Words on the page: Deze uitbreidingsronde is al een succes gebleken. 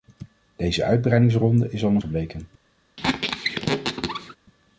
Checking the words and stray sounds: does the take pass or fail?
fail